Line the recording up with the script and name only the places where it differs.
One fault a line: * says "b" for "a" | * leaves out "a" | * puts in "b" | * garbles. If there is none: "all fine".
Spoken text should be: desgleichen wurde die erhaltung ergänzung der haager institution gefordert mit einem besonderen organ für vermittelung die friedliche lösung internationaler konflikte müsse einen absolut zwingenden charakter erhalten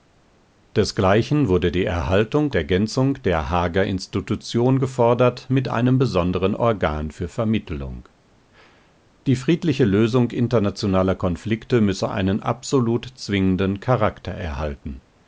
all fine